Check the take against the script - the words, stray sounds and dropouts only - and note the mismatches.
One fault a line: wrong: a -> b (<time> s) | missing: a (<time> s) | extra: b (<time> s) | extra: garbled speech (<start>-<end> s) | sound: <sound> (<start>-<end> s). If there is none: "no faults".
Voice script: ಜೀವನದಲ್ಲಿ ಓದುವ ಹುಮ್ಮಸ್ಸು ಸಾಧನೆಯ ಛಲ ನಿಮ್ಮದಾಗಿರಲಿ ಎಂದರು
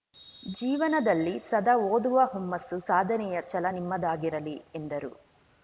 extra: ಸದಾ (1.5 s)